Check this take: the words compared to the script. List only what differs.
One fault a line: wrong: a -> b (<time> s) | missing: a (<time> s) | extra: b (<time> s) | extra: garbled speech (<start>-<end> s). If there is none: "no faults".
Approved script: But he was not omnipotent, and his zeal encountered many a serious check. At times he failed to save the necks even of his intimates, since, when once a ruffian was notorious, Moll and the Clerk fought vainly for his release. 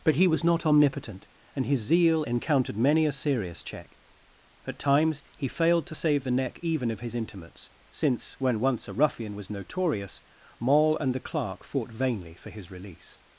wrong: necks -> neck (6.3 s)